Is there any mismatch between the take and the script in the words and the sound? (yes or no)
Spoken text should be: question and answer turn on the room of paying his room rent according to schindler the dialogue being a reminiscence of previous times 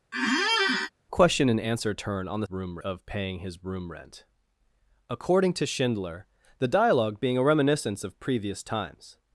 yes